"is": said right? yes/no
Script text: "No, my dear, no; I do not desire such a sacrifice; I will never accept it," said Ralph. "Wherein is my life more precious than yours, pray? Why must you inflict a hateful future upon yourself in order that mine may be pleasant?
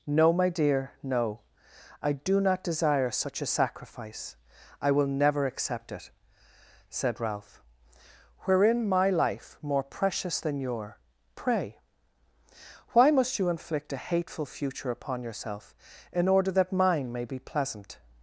no